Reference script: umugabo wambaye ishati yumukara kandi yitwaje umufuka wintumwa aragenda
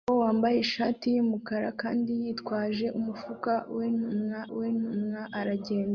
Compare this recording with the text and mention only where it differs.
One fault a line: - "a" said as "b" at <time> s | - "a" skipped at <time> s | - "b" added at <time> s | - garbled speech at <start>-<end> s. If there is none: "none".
- "wintumwa" added at 4.6 s